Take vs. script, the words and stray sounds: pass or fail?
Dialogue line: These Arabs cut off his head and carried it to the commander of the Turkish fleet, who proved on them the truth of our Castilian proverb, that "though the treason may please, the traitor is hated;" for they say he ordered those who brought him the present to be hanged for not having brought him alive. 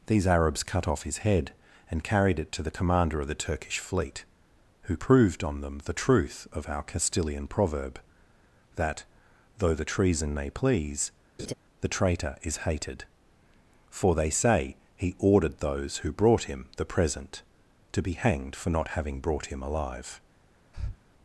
fail